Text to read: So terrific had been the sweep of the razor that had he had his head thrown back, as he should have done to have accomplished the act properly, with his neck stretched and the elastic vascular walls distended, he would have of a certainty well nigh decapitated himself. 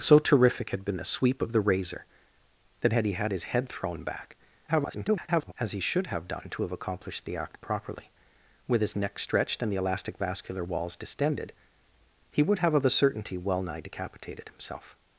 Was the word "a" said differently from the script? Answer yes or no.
no